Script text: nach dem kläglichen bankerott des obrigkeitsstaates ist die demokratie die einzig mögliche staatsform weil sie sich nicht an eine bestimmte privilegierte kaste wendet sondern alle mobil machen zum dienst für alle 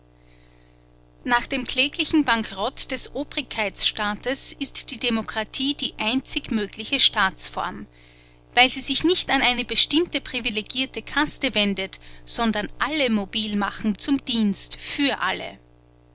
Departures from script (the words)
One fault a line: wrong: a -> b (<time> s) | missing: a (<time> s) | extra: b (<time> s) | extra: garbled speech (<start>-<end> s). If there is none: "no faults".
no faults